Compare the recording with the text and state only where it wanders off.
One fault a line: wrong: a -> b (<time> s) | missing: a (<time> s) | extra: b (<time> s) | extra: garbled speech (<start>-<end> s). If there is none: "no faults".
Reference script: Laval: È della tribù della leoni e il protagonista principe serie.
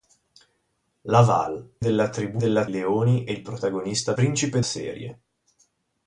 no faults